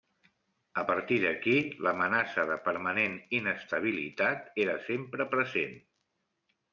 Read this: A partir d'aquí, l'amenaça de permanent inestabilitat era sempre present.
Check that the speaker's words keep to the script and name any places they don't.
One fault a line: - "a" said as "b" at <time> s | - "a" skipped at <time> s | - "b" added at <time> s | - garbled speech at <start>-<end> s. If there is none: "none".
none